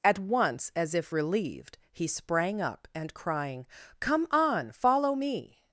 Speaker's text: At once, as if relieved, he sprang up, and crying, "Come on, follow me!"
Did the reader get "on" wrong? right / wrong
right